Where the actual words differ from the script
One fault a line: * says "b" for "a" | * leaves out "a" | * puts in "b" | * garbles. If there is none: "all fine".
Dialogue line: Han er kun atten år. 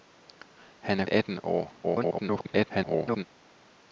* leaves out "kun"
* garbles